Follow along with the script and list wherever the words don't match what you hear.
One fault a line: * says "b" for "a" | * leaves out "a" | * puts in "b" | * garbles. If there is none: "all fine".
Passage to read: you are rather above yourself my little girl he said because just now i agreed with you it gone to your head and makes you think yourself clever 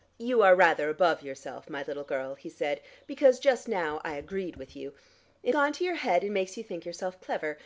all fine